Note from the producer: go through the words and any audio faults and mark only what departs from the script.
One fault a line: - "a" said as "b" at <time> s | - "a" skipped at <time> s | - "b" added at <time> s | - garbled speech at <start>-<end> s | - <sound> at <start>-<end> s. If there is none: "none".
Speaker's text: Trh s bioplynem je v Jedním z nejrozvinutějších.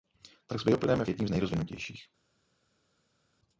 none